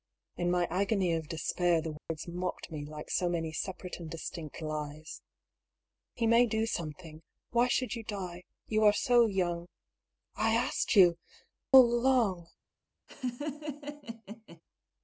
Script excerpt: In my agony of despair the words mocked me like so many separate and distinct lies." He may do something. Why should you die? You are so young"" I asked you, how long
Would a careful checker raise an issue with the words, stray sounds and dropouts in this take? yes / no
yes